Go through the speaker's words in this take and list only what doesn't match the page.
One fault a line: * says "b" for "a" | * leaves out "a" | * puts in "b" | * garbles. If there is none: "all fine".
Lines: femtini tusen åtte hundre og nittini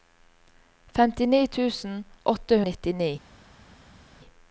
* leaves out "hundre"